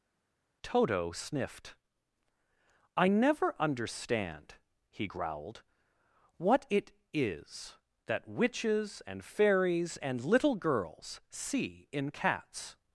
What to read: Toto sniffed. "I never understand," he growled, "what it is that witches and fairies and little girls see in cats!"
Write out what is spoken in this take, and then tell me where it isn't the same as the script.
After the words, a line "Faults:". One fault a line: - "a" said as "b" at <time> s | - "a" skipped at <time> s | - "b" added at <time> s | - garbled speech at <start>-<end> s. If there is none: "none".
Toto sniffed. "I never understand," he growled, "what it is that witches and fairies and little girls see in cats!"
Faults:
none